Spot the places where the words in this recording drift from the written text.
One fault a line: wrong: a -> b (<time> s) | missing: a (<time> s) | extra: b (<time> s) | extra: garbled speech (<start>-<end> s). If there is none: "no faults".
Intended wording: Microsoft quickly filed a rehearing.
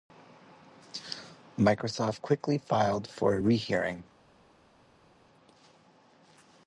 extra: for (3.1 s)